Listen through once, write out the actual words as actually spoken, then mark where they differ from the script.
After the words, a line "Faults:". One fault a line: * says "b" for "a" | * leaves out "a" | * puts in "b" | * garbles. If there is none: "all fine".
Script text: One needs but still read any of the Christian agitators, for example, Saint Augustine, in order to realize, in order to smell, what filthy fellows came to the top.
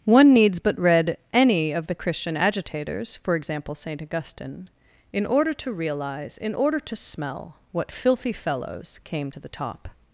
One needs but read any of the Christian agitators, for example, Saint Augustine, in order to realize, in order to smell, what filthy fellows came to the top.
Faults:
* leaves out "still"